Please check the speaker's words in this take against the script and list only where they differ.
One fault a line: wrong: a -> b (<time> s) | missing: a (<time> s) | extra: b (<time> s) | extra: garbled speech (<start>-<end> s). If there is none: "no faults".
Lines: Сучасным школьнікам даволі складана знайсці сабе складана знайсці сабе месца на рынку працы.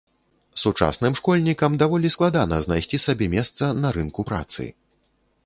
missing: складана знайсці сабе (3.3 s)